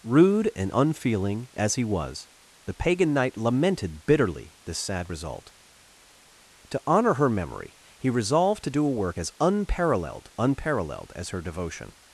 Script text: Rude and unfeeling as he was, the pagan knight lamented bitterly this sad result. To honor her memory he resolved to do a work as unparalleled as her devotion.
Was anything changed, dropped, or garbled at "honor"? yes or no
no